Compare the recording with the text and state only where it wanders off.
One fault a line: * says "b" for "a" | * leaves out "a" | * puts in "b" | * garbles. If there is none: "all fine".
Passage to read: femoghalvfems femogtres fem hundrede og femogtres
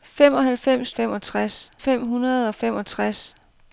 all fine